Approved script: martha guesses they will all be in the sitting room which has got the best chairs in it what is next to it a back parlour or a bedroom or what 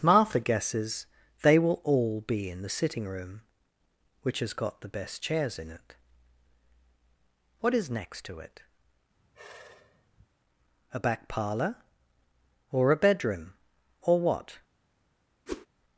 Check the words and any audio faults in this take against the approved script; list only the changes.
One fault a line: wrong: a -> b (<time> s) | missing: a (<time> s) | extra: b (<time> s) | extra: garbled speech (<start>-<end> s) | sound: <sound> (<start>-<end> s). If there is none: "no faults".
sound: sigh (9.2-10.3 s)
sound: whoosh (15.5-15.7 s)